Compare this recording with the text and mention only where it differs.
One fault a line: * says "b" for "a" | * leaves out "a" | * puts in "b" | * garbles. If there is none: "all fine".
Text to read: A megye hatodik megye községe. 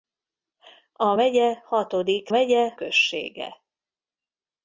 all fine